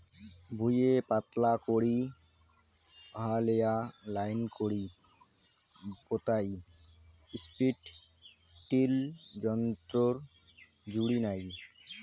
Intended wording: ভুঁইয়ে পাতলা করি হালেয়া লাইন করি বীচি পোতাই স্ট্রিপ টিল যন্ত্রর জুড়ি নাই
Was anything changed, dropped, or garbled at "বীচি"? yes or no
yes